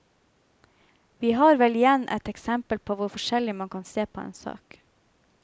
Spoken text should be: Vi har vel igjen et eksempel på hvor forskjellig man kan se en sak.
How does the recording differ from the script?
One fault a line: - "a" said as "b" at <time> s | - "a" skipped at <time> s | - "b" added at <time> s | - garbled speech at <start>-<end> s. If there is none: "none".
- "på" added at 4.1 s